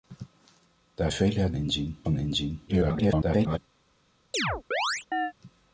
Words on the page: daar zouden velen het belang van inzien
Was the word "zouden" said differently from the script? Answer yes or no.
yes